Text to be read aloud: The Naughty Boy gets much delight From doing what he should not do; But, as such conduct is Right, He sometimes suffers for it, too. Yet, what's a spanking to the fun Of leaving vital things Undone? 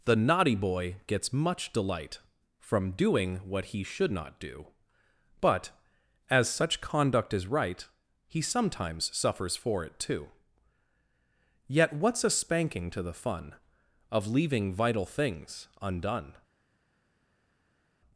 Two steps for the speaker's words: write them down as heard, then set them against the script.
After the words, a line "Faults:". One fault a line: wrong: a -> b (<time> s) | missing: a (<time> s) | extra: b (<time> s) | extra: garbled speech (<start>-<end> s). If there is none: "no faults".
The Naughty Boy gets much delight From doing what he should not do; But, as such conduct is Right, He sometimes suffers for it, too. Yet, what's a spanking to the fun Of leaving vital things Undone?
Faults:
no faults